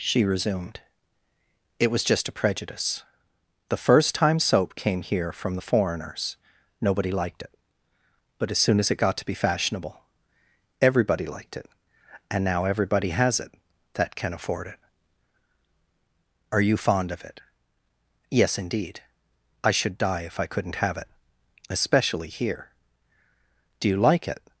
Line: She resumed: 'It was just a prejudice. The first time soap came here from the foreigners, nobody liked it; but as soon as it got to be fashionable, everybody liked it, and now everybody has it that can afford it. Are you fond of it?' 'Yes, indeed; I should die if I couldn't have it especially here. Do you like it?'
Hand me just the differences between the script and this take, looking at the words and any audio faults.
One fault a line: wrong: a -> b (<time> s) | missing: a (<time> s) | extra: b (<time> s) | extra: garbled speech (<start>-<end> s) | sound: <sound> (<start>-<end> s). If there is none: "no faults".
no faults